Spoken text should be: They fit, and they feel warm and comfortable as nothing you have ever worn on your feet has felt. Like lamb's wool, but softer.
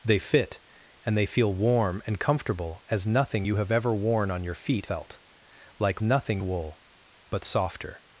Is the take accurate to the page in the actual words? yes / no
no